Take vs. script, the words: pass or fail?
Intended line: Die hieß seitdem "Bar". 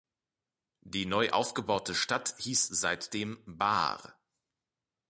fail